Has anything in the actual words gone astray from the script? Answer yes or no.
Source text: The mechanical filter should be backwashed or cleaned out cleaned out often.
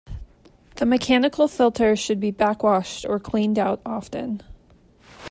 yes